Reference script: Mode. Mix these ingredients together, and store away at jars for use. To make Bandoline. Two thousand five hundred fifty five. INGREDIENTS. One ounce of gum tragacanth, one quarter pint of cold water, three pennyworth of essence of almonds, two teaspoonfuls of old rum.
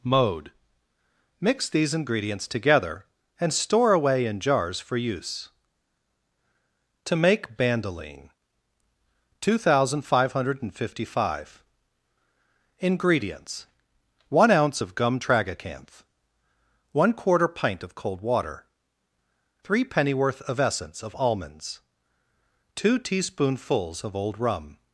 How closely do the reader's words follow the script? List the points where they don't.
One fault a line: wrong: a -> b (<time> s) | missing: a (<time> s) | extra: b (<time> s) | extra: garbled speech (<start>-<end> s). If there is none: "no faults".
wrong: at -> in (4.2 s)